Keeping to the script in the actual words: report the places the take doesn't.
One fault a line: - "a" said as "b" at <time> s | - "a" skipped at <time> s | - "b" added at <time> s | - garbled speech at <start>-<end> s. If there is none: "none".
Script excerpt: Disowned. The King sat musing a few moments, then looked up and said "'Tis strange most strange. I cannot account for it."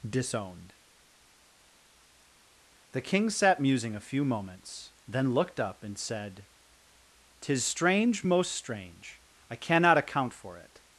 none